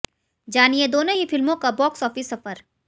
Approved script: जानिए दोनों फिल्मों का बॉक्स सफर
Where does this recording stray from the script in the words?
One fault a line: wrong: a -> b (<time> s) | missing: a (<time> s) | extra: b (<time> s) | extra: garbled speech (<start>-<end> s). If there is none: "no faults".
extra: ही (1.1 s)
extra: ऑफिस (2.0 s)